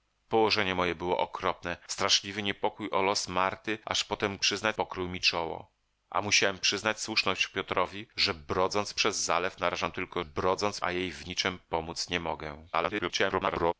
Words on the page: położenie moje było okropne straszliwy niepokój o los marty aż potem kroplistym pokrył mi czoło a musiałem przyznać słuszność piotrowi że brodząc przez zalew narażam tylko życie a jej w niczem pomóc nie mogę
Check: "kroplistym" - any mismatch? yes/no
yes